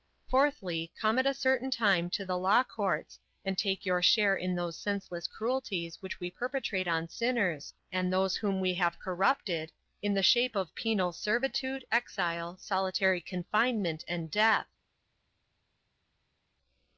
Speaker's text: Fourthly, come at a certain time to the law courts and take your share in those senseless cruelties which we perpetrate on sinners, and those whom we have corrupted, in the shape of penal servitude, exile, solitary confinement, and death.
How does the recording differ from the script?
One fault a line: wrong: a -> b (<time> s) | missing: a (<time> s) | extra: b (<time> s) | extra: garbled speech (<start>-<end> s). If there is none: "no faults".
no faults